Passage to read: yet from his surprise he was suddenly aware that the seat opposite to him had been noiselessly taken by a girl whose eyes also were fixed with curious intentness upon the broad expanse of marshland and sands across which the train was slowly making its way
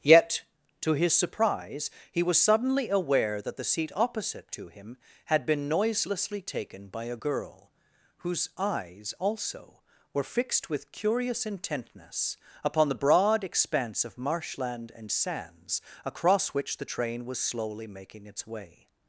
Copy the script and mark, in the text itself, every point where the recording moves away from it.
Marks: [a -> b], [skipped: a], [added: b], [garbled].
yet [from -> to] his surprise he was suddenly aware that the seat opposite to him had been noiselessly taken by a girl whose eyes also were fixed with curious intentness upon the broad expanse of marshland and sands across which the train was slowly making its way